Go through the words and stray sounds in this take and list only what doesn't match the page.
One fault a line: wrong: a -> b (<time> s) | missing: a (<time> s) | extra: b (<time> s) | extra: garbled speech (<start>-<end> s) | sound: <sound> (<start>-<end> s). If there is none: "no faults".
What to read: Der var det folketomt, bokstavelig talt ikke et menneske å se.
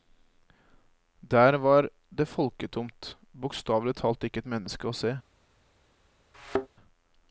sound: thud (6.3-6.7 s)